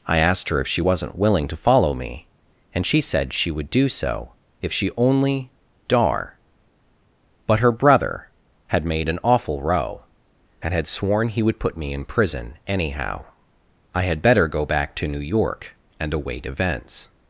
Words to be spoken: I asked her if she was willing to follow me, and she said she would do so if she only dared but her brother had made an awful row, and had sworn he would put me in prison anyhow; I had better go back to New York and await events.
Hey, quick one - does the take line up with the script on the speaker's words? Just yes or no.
no